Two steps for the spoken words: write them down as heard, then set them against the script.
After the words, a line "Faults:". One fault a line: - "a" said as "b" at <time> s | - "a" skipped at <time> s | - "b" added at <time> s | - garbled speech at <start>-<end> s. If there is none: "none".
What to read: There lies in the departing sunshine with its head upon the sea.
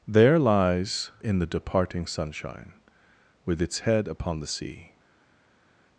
There lies in the departing sunshine with its head upon the sea.
Faults:
none